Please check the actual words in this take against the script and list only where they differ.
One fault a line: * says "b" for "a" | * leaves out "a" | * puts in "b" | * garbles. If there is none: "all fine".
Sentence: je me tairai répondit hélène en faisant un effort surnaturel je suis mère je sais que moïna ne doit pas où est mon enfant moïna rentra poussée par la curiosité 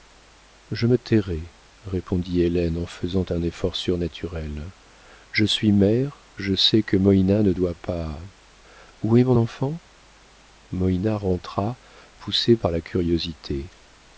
all fine